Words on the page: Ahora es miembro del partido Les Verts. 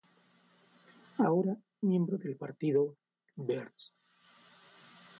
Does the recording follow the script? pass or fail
fail